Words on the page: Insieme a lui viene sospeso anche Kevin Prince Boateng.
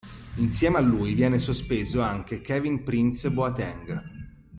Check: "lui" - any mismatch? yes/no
no